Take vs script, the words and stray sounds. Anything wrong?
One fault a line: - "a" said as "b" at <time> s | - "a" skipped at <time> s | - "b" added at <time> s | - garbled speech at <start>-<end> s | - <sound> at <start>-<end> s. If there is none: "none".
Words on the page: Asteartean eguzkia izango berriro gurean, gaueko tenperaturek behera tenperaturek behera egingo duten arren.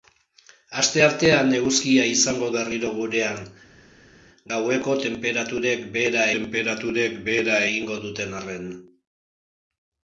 none